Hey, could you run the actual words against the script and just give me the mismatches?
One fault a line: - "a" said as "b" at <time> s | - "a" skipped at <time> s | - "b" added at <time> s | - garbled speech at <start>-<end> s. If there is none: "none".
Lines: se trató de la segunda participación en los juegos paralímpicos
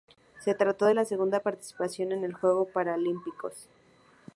none